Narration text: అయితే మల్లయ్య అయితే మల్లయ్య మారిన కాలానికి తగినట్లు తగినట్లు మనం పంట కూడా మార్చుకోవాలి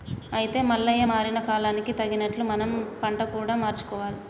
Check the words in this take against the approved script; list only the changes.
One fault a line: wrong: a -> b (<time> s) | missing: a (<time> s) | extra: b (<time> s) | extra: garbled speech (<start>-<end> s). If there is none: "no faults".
missing: అయితే మల్లయ్య (1.0 s)
missing: తగినట్లు (2.4 s)